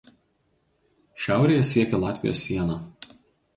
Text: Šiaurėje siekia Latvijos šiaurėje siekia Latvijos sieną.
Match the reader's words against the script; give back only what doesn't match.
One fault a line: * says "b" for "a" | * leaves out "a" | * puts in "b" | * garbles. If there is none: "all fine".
* leaves out "šiaurėje siekia Latvijos"